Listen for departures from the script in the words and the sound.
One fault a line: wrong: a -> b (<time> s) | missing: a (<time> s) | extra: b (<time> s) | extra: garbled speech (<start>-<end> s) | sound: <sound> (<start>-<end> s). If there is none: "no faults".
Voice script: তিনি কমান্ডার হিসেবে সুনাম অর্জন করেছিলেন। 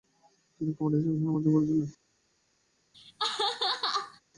sound: laugh (2.9-4.2 s)